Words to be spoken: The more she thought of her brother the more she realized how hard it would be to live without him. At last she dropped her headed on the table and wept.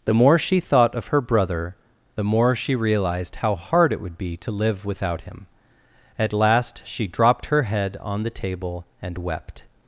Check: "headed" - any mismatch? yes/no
yes